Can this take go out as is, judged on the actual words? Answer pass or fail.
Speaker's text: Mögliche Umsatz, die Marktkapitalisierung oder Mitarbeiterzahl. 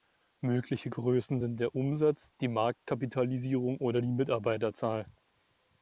fail